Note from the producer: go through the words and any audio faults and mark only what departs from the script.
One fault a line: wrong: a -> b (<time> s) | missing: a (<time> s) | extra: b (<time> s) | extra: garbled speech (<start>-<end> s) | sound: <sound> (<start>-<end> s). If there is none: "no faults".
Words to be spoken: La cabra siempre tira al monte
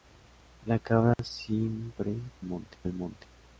sound: dropout (1.1-1.2 s)
wrong: tira -> monte (2.4 s)